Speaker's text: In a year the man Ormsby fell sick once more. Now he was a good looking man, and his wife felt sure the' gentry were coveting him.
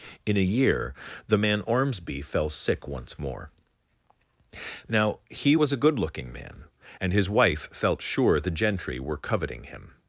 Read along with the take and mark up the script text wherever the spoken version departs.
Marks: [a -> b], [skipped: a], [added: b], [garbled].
In a year the man Ormsby fell sick once more. Now he was a good looking man, and his wife felt sure the' gentry were coveting him.